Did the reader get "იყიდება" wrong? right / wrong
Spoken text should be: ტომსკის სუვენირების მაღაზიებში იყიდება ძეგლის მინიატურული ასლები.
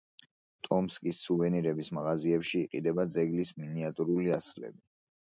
right